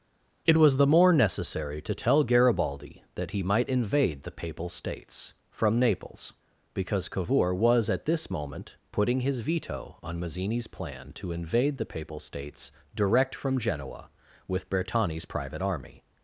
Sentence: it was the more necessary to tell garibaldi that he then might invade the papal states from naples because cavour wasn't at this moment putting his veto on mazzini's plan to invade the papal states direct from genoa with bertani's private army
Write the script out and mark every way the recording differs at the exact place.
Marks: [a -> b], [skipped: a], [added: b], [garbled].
it was the more necessary to tell garibaldi that he [skipped: then] might invade the papal states from naples because cavour [wasn't -> was] at this moment putting his veto on mazzini's plan to invade the papal states direct from genoa with bertani's private army